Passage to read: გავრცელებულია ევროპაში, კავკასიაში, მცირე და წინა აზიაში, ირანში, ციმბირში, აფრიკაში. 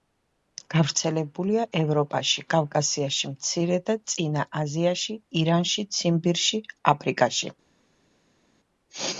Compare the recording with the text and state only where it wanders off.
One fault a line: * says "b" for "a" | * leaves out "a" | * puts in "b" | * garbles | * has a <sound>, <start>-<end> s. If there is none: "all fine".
all fine